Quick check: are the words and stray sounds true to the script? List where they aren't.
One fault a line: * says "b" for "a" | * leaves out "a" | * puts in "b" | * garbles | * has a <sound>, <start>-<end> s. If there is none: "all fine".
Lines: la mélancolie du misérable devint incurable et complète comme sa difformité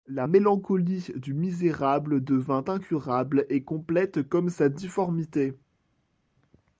all fine